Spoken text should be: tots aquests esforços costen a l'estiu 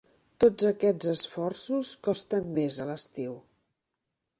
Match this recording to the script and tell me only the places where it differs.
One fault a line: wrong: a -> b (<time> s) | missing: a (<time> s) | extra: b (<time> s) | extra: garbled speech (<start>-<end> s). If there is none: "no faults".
extra: més (2.6 s)